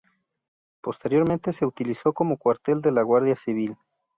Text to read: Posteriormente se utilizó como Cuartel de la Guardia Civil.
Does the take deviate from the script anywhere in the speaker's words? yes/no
no